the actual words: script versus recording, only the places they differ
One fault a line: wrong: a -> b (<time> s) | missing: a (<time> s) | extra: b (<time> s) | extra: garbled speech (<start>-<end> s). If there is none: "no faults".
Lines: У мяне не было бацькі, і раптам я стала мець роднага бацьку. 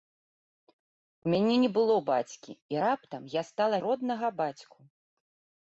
missing: мець (3.8 s)